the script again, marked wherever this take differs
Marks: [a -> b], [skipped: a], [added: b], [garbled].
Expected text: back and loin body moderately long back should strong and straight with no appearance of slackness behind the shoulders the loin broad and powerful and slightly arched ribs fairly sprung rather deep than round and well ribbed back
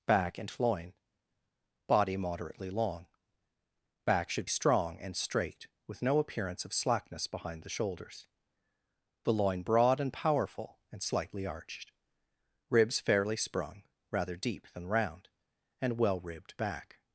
back and loin body moderately long back should strong and straight with no appearance of slackness behind the shoulders the loin broad and powerful and slightly arched ribs fairly sprung rather deep than round and well ribbed back